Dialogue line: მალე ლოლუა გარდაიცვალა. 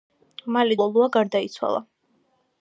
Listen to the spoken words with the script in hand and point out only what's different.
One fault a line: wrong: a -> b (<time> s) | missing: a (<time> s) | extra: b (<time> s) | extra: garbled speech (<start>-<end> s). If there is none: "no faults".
no faults